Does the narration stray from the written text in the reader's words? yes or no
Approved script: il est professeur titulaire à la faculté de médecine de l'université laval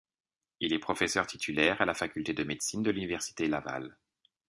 no